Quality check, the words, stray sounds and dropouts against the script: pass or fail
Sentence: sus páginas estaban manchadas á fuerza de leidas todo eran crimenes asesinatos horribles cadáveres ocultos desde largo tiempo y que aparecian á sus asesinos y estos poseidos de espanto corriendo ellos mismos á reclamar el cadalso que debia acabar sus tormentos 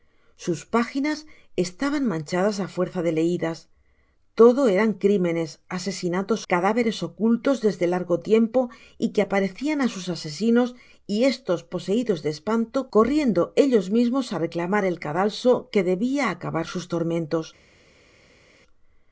fail